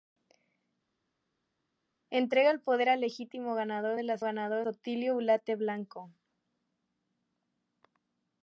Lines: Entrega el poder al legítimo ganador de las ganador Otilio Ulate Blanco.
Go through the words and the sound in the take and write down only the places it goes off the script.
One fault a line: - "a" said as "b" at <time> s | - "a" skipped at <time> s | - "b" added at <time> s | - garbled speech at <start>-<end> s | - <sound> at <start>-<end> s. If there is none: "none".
none